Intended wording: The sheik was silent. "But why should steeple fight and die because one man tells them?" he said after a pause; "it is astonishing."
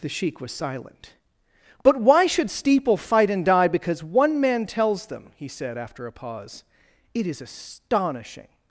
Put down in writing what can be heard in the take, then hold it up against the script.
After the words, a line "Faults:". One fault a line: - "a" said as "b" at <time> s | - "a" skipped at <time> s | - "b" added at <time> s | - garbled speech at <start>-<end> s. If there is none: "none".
The sheik was silent. "But why should steeple fight and die because one man tells them?" he said after a pause; "it is astonishing."
Faults:
none